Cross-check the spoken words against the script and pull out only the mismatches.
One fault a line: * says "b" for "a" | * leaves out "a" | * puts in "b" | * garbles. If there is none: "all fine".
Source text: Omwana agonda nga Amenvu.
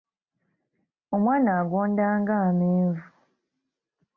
all fine